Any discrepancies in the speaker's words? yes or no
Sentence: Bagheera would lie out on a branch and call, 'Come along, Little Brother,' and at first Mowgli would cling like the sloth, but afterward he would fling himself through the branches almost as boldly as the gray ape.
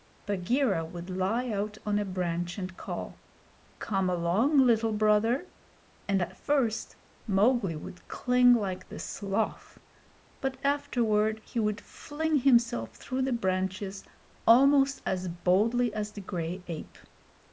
no